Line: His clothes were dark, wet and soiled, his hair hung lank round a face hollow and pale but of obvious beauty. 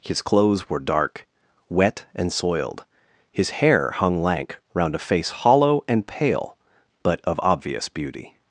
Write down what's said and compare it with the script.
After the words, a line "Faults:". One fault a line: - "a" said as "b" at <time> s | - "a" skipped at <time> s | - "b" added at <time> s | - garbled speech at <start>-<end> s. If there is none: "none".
His clothes were dark, wet and soiled, his hair hung lank round a face hollow and pale but of obvious beauty.
Faults:
none